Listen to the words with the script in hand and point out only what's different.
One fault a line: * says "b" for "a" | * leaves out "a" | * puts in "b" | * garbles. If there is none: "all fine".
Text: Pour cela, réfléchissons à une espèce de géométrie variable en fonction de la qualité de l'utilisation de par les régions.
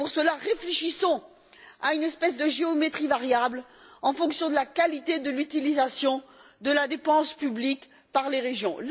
* puts in "la dépense publique"